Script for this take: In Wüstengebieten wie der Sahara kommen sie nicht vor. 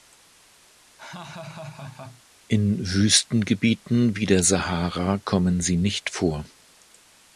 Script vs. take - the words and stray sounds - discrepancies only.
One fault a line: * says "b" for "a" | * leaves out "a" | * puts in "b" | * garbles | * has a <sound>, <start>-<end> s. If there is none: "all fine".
* has a laugh, 1.0-2.2 s